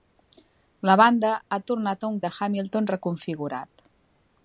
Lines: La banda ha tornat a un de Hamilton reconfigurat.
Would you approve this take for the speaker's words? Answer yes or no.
yes